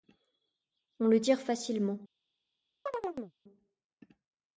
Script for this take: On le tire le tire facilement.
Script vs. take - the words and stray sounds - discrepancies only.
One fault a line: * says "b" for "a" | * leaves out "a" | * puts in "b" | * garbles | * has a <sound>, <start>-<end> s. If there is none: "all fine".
* leaves out "le tire"
* has a chirp, 2.9-3.3 s